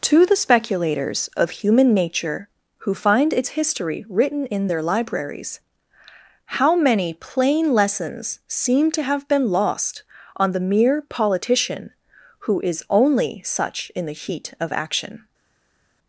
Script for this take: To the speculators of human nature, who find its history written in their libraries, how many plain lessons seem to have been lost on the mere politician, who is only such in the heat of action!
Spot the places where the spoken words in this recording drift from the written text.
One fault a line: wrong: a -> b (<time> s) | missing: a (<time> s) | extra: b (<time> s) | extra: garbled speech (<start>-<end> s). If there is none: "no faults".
no faults